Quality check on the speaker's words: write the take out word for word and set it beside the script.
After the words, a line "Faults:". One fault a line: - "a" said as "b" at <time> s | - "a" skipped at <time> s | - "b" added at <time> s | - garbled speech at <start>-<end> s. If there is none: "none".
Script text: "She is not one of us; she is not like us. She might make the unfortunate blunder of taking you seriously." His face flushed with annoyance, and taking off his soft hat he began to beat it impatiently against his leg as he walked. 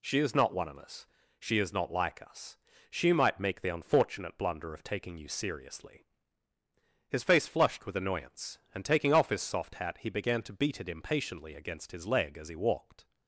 "She is not one of us; she is not like us. She might make the unfortunate blunder of taking you seriously." His face flushed with annoyance, and taking off his soft hat he began to beat it impatiently against his leg as he walked.
Faults:
none